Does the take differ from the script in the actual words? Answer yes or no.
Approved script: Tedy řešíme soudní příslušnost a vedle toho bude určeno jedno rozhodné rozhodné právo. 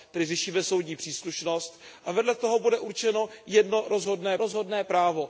no